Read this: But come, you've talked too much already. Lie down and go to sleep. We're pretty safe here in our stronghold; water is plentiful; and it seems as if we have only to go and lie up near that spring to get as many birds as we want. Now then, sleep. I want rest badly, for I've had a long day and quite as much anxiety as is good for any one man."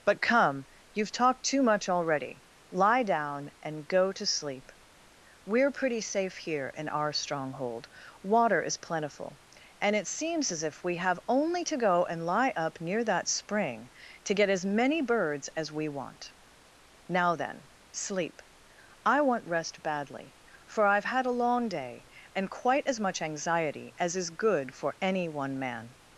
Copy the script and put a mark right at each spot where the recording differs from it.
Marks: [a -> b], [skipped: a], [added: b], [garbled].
But come, you've talked too much already. Lie down and go to sleep. We're pretty safe here in our stronghold; water is plentiful; and it seems as if we have only to go and lie up near that spring to get as many birds as we want. Now then, sleep. I want rest badly, for I've had a long day and quite as much anxiety as is good for any one man."